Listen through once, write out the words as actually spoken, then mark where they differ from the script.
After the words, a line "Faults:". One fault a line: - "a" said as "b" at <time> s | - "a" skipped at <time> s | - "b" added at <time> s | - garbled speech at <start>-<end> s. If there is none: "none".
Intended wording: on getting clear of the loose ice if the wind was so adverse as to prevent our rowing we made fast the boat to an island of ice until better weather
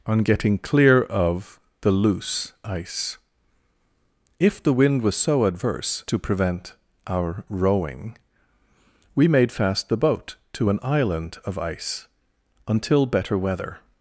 on getting clear of the loose ice if the wind was so adverse to prevent our rowing we made fast the boat to an island of ice until better weather
Faults:
- "as" skipped at 6.0 s